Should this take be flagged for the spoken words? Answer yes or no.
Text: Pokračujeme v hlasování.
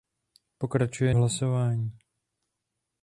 no